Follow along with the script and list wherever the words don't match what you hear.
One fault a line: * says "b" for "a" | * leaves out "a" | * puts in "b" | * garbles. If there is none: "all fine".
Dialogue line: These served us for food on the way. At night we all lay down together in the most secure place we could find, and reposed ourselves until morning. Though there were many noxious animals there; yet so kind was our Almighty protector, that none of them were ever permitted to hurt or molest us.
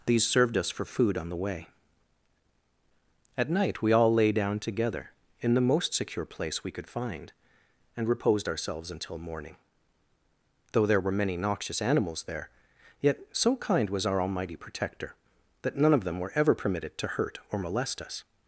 all fine